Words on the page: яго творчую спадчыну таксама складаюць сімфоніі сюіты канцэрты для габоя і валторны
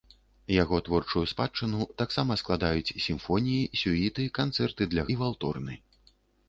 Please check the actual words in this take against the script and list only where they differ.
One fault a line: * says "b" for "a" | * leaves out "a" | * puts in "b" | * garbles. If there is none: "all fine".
* leaves out "габоя"